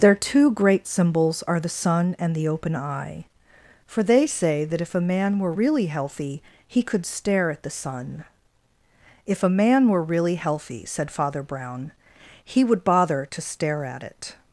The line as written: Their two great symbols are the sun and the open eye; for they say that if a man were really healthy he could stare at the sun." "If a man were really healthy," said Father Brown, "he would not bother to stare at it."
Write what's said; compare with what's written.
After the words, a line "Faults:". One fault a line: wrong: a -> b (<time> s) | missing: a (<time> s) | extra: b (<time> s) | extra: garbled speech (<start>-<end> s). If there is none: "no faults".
Their two great symbols are the sun and the open eye; for they say that if a man were really healthy he could stare at the sun." "If a man were really healthy," said Father Brown, "he would bother to stare at it."
Faults:
missing: not (12.8 s)